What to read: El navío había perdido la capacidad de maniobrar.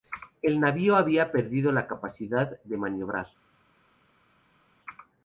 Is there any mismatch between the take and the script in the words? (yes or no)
no